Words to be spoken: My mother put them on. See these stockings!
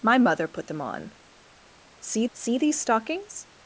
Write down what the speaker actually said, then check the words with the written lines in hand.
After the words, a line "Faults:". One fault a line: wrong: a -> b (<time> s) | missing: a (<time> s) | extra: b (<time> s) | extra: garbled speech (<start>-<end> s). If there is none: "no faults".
My mother put them on. See see these stockings!
Faults:
extra: see (2.3 s)